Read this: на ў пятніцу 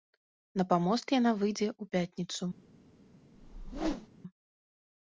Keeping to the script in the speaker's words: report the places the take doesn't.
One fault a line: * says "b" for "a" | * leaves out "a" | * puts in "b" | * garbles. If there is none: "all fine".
* puts in "памост яна выйдзе"